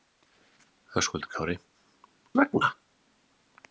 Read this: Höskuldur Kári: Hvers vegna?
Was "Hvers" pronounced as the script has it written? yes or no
no